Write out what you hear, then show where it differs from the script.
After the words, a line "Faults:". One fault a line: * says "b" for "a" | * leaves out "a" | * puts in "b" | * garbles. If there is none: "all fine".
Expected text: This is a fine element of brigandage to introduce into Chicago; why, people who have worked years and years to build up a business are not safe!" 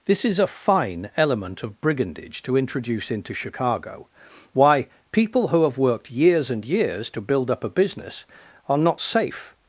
This is a fine element of brigandage to introduce into Chicago; why, people who have worked years and years to build up a business are not safe!"
Faults:
all fine